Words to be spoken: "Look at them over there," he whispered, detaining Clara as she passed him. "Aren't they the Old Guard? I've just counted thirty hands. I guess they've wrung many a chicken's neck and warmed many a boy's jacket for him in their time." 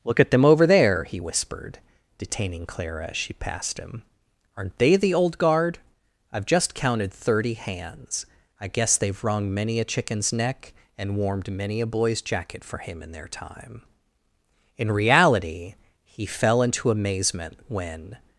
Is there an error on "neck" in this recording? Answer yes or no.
no